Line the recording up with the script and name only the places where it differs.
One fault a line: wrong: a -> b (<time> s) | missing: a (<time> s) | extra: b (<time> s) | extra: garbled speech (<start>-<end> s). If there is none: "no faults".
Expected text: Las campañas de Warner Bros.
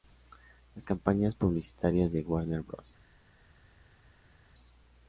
extra: publicitarias (1.3 s)